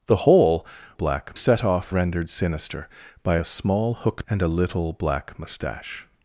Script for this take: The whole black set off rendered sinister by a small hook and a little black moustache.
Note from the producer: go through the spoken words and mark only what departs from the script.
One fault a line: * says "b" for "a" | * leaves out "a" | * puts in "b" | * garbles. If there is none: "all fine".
all fine